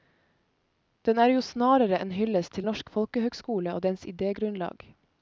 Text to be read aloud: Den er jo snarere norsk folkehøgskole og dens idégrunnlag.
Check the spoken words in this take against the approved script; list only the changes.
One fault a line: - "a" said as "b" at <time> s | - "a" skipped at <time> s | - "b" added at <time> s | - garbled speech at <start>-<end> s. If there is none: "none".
- "en hyllest til" added at 2.0 s